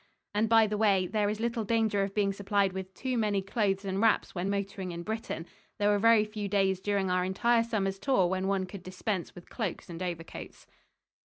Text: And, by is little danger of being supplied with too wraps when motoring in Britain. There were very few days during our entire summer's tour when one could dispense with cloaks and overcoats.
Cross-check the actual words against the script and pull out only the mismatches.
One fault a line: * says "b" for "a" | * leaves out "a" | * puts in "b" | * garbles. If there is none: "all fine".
* puts in "the way there"
* puts in "many clothes and"